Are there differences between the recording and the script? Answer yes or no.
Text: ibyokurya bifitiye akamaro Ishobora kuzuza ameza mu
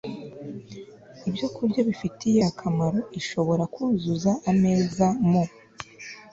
no